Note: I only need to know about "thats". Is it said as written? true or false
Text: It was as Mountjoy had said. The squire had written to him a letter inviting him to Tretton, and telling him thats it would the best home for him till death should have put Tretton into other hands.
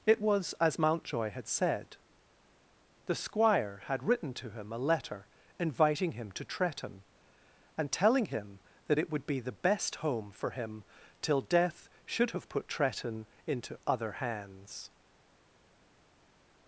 false